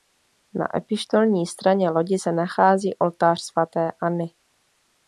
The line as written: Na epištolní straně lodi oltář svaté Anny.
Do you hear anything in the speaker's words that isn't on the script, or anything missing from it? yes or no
yes